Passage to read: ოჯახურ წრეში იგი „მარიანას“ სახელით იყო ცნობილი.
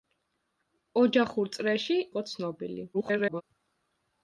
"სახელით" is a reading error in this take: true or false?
true